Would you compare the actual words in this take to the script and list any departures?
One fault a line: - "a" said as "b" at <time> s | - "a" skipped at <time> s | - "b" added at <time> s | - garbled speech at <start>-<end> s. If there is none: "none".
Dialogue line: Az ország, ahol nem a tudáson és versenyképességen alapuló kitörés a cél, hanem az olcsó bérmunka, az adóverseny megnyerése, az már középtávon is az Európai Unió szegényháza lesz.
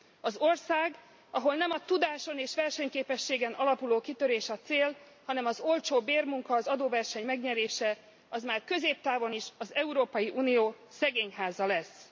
none